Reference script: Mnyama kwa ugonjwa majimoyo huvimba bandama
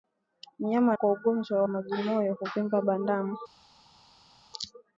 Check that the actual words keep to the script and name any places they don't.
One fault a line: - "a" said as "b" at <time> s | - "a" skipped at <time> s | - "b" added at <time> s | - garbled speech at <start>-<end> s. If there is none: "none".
none